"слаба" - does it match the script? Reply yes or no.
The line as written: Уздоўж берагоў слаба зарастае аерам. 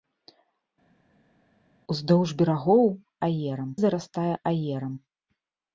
no